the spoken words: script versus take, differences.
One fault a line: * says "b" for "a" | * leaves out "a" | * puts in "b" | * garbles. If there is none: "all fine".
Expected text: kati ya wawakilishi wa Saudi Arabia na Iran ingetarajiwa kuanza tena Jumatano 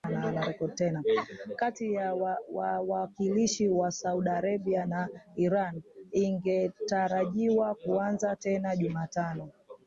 all fine